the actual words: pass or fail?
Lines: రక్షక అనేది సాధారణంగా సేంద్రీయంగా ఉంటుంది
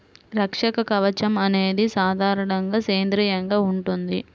fail